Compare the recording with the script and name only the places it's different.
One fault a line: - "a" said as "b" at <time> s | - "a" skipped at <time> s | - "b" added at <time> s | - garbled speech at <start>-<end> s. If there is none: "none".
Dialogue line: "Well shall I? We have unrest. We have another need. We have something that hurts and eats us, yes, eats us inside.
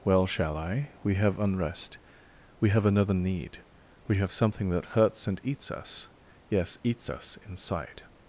none